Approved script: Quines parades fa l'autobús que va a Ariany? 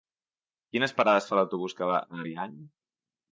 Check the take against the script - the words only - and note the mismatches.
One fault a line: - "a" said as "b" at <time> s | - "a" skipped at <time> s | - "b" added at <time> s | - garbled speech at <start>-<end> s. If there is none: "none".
none